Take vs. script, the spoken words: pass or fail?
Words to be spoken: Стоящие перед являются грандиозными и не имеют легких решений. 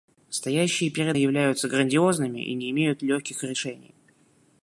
pass